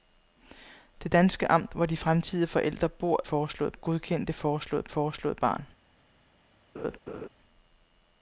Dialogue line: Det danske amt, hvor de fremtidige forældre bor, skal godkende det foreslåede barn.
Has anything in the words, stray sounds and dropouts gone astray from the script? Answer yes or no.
yes